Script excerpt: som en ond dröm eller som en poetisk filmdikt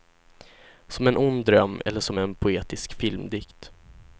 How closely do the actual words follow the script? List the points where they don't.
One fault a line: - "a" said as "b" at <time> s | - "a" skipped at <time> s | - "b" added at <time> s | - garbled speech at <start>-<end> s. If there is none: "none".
none